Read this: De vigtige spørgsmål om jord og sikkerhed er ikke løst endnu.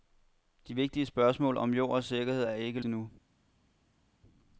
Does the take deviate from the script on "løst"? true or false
true